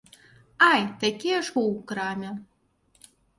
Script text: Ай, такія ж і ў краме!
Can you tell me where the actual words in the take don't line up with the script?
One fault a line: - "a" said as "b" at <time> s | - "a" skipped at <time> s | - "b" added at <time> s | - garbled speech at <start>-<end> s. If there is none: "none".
none